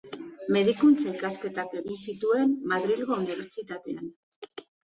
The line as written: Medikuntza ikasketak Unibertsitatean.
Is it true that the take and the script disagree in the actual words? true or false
true